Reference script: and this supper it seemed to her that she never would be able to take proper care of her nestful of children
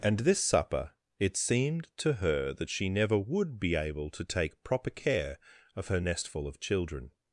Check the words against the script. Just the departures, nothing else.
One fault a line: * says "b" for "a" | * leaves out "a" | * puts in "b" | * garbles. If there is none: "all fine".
all fine